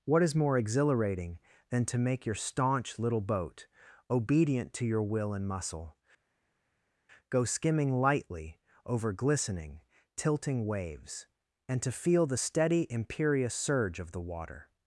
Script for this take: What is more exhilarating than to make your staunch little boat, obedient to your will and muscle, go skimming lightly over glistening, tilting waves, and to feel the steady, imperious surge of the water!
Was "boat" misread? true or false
false